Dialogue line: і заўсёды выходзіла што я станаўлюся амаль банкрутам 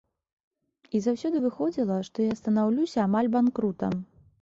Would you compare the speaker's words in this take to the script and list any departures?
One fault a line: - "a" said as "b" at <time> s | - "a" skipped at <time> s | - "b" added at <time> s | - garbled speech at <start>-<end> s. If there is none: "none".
none